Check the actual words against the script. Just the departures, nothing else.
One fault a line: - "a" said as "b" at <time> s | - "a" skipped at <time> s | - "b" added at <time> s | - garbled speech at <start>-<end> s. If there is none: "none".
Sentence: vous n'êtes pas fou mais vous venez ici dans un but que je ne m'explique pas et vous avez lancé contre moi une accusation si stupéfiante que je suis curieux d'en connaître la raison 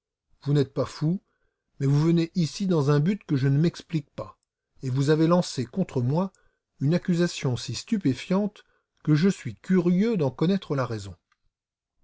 none